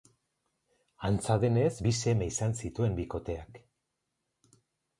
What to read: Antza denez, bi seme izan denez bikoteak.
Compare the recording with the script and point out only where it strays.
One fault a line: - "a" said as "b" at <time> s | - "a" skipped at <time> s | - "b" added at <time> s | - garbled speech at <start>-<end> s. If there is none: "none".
- "denez" said as "zituen" at 2.6 s